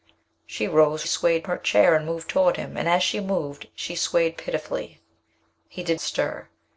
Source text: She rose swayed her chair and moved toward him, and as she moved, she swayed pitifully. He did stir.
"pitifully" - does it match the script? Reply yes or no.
yes